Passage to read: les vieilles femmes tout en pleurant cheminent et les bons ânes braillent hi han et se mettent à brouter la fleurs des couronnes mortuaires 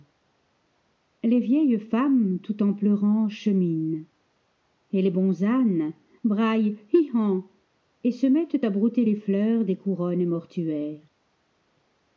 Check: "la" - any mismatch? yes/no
yes